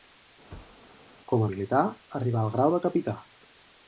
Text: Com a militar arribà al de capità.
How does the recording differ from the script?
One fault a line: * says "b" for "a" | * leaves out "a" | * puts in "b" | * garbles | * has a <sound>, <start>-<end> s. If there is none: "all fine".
* has a thud, 0.5-1.0 s
* puts in "grau"